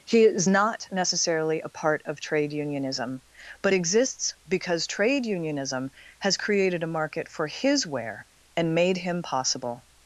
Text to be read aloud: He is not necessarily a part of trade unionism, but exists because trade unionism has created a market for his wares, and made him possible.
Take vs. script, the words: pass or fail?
fail